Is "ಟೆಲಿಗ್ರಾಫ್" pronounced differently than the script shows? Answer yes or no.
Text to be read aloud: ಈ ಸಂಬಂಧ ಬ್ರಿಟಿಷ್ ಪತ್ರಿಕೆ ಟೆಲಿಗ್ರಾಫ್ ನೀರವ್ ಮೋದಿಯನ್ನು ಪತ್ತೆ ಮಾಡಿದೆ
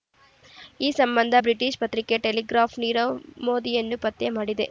no